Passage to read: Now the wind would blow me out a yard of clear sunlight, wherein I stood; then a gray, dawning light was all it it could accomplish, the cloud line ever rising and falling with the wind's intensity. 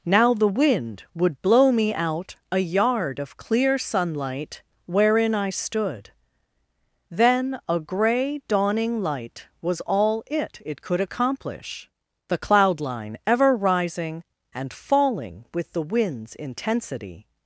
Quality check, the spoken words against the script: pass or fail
pass